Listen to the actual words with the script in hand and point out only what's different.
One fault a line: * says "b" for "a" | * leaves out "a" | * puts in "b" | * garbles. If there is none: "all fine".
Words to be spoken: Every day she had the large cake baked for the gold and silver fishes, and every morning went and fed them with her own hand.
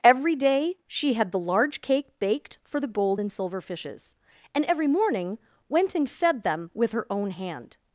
all fine